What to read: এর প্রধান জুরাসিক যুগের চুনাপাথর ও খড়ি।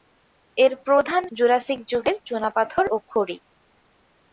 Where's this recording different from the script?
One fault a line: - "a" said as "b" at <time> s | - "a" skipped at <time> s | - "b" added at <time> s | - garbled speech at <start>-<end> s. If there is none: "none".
none